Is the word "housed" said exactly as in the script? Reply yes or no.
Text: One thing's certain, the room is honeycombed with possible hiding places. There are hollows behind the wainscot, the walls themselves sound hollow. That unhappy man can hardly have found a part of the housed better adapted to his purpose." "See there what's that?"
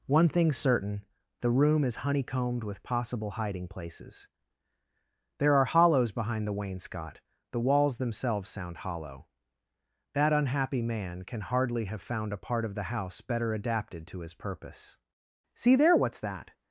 no